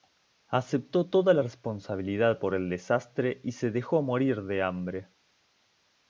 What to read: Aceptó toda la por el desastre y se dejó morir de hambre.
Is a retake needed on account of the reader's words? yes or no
yes